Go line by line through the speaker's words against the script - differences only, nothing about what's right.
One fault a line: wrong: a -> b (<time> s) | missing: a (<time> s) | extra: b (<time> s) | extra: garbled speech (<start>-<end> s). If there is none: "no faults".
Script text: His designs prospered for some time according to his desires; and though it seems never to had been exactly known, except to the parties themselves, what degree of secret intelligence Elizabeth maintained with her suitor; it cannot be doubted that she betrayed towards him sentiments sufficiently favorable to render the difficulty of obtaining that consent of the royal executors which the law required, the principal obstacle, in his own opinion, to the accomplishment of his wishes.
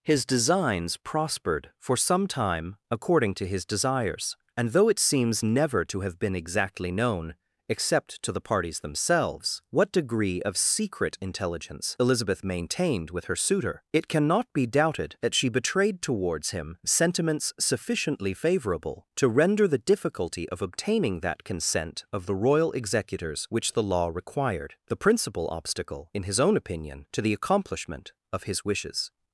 wrong: had -> have (6.0 s)